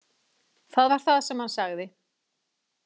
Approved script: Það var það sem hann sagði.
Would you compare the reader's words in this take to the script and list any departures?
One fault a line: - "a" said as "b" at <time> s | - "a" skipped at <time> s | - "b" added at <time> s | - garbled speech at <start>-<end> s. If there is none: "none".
none